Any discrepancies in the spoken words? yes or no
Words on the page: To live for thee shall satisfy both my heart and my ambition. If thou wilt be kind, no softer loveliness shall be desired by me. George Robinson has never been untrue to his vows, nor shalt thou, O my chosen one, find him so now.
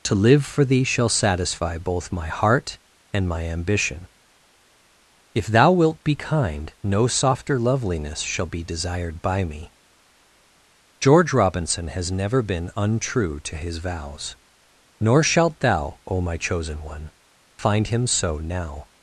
no